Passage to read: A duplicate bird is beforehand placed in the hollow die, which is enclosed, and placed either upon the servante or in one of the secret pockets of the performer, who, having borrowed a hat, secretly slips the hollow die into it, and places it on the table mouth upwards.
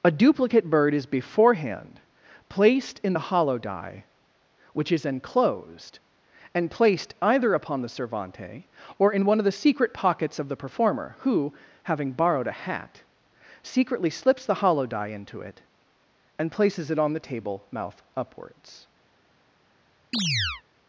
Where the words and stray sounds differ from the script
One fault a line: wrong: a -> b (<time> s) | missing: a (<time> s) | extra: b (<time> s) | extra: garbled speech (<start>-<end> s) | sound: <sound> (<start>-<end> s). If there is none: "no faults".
sound: chirp (20.1-20.6 s)